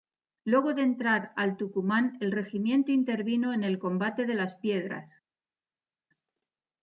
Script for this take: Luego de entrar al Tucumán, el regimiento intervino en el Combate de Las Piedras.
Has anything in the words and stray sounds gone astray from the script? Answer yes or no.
no